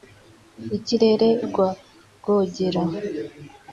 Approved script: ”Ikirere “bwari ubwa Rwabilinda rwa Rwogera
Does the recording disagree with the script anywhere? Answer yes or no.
yes